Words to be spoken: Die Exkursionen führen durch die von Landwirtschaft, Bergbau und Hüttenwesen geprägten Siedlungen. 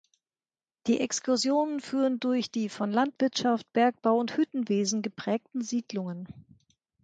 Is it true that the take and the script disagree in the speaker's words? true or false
false